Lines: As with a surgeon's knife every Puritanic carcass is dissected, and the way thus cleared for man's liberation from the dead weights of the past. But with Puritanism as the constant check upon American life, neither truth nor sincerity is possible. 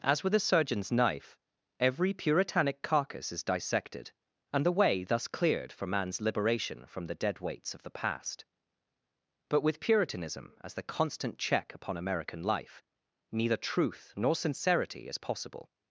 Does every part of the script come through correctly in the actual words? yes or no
yes